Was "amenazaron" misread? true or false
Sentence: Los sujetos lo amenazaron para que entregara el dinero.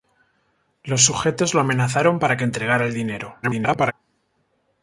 false